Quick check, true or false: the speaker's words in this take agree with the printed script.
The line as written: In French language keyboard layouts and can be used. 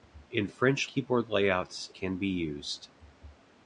false